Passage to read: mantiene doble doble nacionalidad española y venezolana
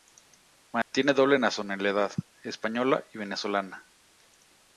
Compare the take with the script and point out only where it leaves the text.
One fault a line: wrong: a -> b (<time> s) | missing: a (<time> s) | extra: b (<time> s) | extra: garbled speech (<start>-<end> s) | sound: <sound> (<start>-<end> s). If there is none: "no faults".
sound: dropout (0.8-0.9 s)
missing: doble (1.4 s)